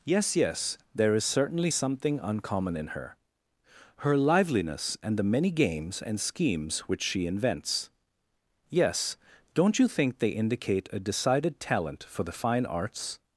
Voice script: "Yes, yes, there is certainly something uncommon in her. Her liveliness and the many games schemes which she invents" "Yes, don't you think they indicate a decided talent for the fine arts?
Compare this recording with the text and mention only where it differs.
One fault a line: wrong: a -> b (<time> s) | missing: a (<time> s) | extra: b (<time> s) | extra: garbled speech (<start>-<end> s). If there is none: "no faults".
extra: and (6.0 s)